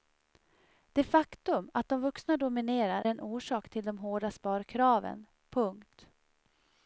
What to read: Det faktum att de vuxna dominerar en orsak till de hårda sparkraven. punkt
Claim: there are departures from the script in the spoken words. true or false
false